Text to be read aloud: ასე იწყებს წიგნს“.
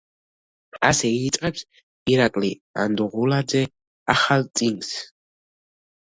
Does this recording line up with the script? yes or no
no